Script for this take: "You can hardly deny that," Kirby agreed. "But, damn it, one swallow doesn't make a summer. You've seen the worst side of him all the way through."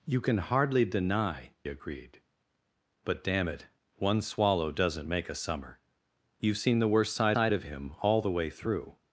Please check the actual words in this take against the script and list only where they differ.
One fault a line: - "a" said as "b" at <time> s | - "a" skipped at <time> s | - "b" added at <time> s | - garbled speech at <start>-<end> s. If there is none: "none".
- "that Kirby" skipped at 1.5 s
- "side" added at 7.3 s